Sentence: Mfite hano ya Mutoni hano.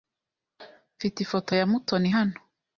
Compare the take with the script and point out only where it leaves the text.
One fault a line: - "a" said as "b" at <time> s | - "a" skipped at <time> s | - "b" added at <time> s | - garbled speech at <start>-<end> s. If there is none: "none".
- "hano" said as "ifoto" at 1.2 s